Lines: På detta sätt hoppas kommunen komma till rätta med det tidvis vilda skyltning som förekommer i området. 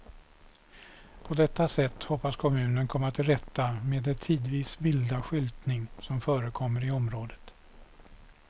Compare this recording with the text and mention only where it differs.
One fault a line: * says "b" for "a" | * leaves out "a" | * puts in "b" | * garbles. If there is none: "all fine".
all fine